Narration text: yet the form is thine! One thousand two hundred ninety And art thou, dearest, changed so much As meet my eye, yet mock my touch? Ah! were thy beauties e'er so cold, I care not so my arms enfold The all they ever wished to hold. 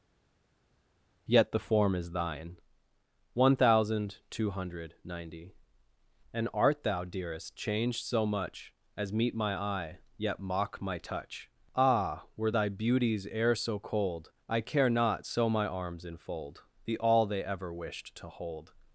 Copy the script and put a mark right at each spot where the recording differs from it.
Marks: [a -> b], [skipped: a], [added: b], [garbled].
yet the form is thine! One thousand two hundred ninety And art thou, dearest, changed so much As meet my eye, yet mock my touch? Ah! were thy beauties e'er so cold, I care not so my arms enfold The all they ever wished to hold.